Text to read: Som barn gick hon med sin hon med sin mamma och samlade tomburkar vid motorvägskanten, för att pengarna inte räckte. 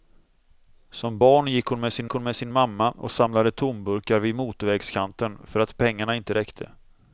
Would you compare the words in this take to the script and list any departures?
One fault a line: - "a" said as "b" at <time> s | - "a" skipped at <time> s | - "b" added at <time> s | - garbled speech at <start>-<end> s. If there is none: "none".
none